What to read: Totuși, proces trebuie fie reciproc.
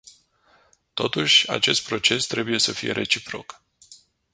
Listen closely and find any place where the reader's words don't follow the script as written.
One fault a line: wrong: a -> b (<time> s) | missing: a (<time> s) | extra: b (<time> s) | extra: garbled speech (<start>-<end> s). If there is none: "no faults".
extra: acest (1.5 s)
extra: să (2.6 s)